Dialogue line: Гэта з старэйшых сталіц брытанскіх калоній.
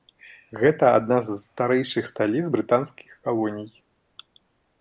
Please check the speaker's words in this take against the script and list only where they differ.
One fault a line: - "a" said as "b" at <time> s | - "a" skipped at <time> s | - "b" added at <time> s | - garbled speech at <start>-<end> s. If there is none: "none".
- "адна" added at 1.0 s